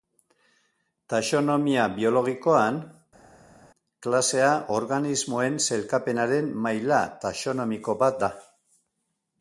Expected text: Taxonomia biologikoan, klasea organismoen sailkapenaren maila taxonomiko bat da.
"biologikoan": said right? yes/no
yes